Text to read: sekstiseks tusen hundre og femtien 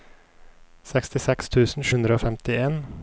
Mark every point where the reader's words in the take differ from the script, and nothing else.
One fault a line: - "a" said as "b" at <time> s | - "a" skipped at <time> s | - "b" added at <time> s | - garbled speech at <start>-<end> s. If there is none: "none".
none